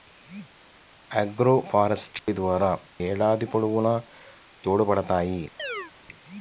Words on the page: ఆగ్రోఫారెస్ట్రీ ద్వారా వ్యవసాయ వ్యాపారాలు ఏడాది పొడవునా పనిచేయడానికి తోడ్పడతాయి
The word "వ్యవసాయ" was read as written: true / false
false